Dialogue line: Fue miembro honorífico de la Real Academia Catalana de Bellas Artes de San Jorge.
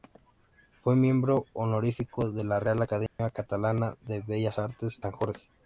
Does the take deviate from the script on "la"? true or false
false